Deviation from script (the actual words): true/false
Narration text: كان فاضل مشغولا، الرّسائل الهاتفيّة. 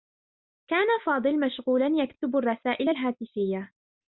true